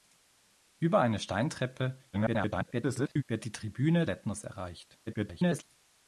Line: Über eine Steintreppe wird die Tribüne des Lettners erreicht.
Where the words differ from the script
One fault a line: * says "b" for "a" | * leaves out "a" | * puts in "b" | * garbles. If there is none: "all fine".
* garbles
* leaves out "des"
* garbles